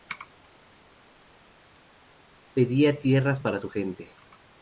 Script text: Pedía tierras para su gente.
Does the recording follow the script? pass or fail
pass